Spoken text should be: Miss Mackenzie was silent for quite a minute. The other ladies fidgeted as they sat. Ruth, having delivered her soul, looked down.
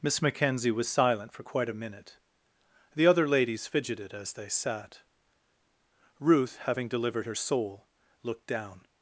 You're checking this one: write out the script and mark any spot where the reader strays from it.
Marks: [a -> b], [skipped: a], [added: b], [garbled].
Miss Mackenzie was silent for quite a minute. The other ladies fidgeted as they sat. Ruth, having delivered her soul, looked down.